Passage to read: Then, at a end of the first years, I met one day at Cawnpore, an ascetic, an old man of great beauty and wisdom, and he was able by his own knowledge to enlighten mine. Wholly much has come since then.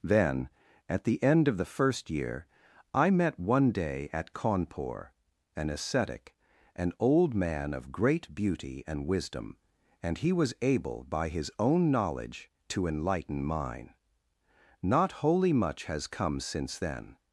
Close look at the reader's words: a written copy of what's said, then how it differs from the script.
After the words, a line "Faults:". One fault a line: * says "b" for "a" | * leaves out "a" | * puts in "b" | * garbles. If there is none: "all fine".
Then, at the end of the first year, I met one day at Cawnpore, an ascetic, an old man of great beauty and wisdom, and he was able by his own knowledge to enlighten mine. Not wholly much has come since then.
Faults:
* says "the" for "a"
* says "year" for "years"
* puts in "Not"